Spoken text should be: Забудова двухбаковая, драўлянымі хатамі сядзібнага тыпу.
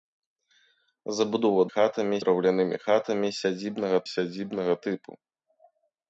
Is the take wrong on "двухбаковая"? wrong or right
wrong